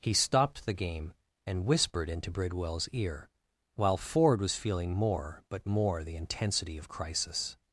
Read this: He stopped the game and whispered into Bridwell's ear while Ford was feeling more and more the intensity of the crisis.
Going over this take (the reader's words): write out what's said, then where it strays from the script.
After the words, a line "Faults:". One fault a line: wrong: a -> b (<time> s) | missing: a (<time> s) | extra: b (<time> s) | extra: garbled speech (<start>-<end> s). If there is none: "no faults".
He stopped the game and whispered into Bridwell's ear while Ford was feeling more but more the intensity of crisis.
Faults:
wrong: and -> but (5.5 s)
missing: the (6.9 s)